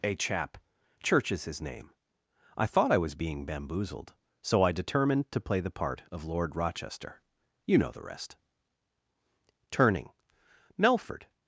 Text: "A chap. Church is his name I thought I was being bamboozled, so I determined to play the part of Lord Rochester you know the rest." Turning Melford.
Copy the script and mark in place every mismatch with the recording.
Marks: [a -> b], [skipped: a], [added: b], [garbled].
"A chap. Church is his name I thought I was being bamboozled, so I determined to play the part of Lord Rochester you know the rest." Turning Melford.